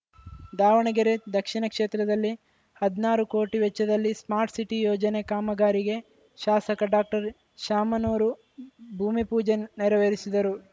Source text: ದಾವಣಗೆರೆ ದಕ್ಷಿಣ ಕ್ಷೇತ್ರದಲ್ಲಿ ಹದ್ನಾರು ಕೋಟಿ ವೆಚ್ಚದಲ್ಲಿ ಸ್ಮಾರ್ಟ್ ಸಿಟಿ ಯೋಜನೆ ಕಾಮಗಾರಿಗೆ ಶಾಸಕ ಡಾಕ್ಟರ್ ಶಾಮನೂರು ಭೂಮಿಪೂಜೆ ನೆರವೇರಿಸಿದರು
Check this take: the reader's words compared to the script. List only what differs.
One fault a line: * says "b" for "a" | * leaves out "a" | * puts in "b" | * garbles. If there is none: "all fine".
all fine